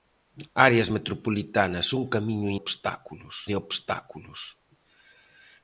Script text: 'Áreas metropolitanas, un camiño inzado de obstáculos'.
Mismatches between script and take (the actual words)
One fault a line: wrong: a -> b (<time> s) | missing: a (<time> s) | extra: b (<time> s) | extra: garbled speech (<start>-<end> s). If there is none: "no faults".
wrong: inzado -> obstáculos (2.6 s)